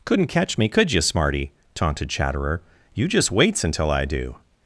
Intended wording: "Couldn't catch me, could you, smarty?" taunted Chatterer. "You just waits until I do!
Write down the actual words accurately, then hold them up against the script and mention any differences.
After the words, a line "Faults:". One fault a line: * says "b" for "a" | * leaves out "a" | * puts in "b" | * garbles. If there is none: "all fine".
"Couldn't catch me, could you, smarty?" taunted Chatterer. "You just waits until I do!
Faults:
all fine